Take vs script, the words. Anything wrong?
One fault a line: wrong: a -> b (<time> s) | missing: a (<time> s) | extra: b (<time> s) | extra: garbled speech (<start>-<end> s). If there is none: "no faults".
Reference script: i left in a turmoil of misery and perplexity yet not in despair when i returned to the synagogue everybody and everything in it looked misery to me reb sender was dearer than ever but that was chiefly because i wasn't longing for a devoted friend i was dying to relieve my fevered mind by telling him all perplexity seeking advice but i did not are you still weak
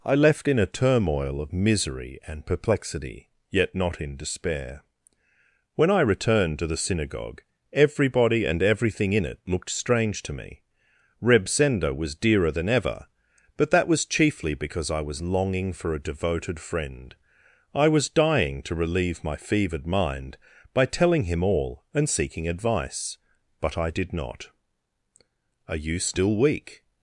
wrong: misery -> strange (9.7 s)
wrong: wasn't -> was (15.0 s)
wrong: perplexity -> and (21.9 s)